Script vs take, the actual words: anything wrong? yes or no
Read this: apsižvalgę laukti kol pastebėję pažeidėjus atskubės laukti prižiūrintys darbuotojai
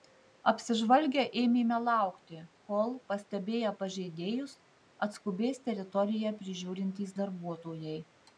yes